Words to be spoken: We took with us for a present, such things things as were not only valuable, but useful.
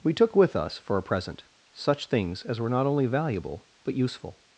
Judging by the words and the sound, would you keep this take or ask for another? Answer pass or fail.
fail